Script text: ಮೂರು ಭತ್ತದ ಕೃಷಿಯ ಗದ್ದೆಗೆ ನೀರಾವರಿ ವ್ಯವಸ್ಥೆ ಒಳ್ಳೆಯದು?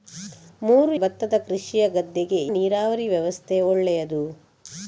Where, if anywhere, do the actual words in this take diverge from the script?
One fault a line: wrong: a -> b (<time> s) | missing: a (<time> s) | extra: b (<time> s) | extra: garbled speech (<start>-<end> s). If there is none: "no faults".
no faults